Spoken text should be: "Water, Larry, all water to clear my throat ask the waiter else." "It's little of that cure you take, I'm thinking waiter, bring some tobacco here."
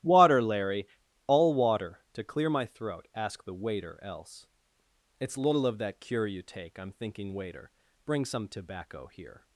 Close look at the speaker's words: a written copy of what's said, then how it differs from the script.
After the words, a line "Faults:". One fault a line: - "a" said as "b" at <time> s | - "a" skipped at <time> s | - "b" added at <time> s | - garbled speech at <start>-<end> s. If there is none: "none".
"Water, Larry, all water to clear my throat ask the waiter else." "It's little of that cure you take, I'm thinking waiter, bring some tobacco here."
Faults:
none